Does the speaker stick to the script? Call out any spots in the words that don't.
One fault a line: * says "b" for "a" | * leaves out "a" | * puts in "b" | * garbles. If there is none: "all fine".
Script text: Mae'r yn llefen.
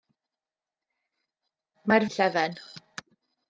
all fine